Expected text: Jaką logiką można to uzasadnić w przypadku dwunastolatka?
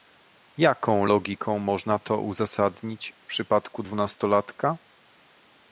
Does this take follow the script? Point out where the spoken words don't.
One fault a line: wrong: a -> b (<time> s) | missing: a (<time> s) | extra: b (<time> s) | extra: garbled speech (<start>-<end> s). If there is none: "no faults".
no faults